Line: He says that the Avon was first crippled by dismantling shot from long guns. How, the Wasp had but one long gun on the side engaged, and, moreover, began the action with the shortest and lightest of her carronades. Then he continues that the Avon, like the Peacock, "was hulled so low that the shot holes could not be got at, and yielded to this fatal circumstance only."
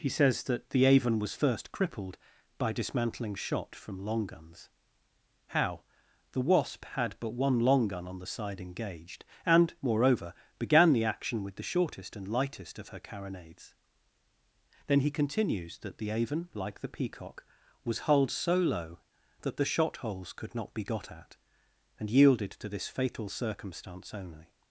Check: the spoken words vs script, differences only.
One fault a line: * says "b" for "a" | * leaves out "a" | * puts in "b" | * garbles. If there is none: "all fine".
all fine